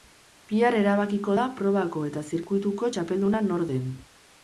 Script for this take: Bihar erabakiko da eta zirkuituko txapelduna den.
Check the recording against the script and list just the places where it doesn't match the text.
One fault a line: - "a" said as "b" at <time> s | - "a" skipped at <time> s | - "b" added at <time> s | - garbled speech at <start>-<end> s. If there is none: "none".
- "probako" added at 1.6 s
- "nor" added at 3.5 s